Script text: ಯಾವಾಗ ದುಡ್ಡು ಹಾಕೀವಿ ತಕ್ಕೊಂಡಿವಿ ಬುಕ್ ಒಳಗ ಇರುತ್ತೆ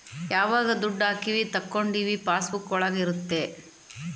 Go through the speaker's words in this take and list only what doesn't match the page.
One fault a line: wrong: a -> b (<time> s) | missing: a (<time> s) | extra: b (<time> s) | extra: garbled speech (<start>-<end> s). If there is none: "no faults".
extra: ಪಾಸ್ (2.3 s)